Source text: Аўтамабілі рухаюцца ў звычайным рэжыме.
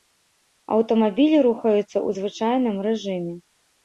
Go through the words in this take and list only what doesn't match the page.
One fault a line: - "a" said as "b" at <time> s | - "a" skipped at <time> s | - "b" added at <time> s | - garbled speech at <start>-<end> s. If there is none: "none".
none